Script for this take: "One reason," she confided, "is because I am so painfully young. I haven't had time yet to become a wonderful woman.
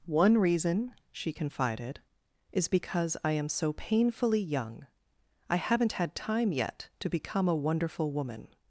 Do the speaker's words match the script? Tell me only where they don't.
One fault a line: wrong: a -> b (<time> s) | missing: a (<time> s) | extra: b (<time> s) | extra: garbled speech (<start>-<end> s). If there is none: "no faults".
no faults